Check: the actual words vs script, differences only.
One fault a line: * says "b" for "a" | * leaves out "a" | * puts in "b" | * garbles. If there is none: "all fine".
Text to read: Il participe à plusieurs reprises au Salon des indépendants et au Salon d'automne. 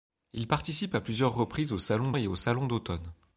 * leaves out "des indépendants"